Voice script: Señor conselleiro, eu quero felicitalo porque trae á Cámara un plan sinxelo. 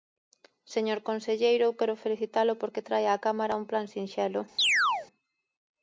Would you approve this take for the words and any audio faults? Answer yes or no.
no